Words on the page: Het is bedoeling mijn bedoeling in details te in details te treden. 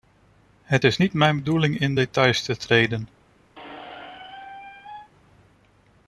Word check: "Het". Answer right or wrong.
right